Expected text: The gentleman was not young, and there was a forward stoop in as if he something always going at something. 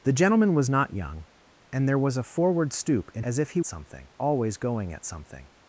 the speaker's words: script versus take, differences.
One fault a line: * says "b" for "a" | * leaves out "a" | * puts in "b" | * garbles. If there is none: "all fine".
all fine